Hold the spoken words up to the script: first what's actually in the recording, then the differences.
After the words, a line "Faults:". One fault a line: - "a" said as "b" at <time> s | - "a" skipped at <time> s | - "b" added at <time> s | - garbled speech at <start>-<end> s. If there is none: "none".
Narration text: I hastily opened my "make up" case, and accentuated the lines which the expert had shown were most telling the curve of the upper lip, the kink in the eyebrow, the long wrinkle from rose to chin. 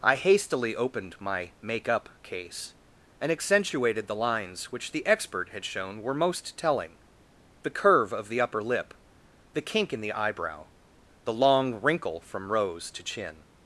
I hastily opened my "make up" case, and accentuated the lines which the expert had shown were most telling the curve of the upper lip, the kink in the eyebrow, the long wrinkle from rose to chin.
Faults:
none